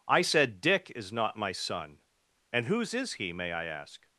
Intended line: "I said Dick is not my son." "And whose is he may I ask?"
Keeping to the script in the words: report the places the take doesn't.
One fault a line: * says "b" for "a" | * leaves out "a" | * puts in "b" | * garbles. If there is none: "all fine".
all fine